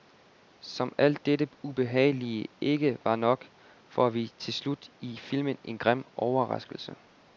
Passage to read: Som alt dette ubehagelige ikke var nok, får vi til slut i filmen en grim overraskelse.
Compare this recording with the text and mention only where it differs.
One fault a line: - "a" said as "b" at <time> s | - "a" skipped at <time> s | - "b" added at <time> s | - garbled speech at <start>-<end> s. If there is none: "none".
none